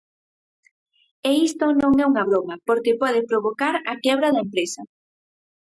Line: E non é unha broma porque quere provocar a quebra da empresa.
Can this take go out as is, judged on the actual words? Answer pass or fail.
fail